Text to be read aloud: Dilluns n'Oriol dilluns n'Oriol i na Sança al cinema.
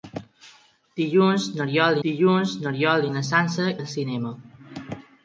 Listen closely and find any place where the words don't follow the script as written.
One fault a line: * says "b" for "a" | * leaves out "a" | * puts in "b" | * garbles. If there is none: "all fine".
all fine